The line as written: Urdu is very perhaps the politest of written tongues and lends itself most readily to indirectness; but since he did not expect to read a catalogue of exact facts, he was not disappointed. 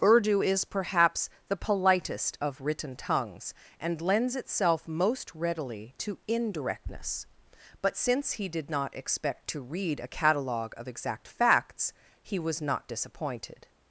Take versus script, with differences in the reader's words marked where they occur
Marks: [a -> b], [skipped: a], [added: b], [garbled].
Urdu is [skipped: very] perhaps the politest of written tongues and lends itself most readily to indirectness; but since he did not expect to read a catalogue of exact facts, he was not disappointed.